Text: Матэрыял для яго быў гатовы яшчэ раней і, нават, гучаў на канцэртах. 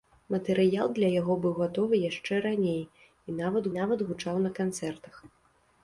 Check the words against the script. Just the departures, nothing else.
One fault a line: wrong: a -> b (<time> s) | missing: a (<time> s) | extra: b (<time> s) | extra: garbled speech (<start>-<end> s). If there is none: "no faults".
extra: нават (3.8 s)